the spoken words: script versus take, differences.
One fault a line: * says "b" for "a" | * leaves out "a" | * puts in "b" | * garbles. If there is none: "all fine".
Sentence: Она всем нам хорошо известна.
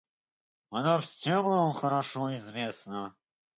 all fine